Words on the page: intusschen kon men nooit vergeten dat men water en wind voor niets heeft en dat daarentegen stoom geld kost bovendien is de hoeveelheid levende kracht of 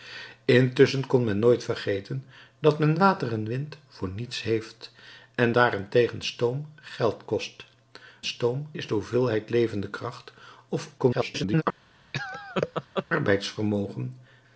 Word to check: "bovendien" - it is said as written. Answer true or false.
false